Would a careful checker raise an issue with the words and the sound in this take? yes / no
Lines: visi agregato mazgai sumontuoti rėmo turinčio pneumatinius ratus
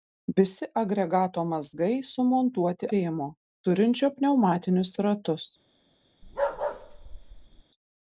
yes